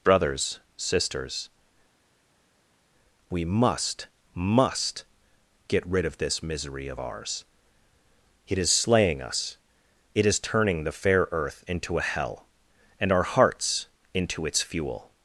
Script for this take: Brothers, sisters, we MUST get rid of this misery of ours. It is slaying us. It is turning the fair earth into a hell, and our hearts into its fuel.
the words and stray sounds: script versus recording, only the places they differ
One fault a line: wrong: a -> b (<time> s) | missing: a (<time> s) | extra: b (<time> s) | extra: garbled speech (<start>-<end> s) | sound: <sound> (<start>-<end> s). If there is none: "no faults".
extra: MUST (4.3 s)